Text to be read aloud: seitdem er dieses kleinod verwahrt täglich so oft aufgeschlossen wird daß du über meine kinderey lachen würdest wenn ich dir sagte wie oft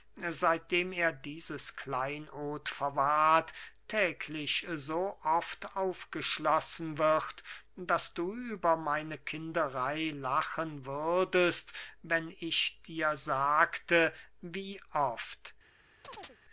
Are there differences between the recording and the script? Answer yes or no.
no